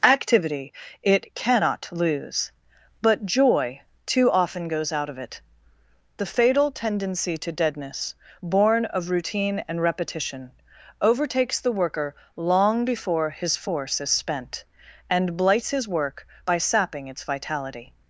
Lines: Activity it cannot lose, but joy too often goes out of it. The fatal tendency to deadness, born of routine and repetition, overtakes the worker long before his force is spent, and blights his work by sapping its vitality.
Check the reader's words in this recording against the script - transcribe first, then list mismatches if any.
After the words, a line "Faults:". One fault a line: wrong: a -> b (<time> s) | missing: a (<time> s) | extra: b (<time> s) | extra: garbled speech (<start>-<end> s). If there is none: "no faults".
Activity it cannot lose, but joy too often goes out of it. The fatal tendency to deadness, born of routine and repetition, overtakes the worker long before his force is spent, and blights his work by sapping its vitality.
Faults:
no faults